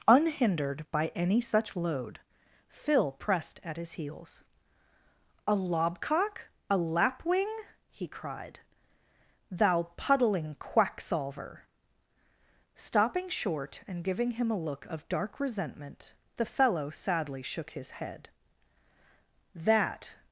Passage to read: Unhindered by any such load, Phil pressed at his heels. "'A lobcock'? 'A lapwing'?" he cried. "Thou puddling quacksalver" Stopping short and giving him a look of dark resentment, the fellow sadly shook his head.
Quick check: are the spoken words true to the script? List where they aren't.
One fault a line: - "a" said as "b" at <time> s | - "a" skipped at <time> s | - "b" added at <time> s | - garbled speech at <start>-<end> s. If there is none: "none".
- "That" added at 19.5 s